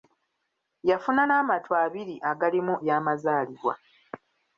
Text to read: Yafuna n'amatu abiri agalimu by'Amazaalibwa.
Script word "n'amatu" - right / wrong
right